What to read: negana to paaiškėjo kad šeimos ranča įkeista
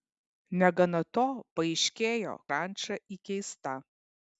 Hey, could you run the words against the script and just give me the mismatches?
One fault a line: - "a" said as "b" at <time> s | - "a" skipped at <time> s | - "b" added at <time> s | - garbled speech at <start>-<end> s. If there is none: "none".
- "kad šeimos" skipped at 2.4 s